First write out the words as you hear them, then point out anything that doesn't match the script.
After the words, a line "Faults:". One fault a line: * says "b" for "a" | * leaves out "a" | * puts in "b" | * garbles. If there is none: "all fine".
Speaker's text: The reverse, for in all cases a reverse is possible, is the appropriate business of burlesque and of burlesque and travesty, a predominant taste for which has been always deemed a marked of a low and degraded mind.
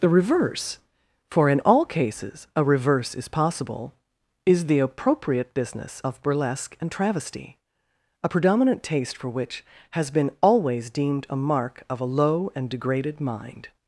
The reverse, for in all cases a reverse is possible, is the appropriate business of burlesque and travesty, a predominant taste for which has been always deemed a mark of a low and degraded mind.
Faults:
* leaves out "of burlesque and"
* says "mark" for "marked"